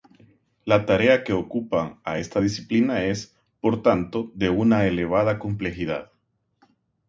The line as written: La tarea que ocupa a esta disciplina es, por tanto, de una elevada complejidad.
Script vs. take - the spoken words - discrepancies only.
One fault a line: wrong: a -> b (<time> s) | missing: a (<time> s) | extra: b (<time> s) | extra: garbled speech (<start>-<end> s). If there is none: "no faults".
no faults